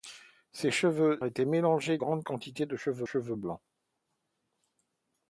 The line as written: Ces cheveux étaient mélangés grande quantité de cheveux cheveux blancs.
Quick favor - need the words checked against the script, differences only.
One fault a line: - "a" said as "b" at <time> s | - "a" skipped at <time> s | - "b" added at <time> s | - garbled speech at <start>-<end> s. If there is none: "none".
none